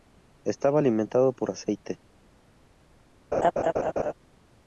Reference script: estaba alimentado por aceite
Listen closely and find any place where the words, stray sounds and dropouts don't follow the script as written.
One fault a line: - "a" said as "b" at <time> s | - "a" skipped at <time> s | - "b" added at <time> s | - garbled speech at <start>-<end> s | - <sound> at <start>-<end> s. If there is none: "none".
- laugh at 3.3-4.1 s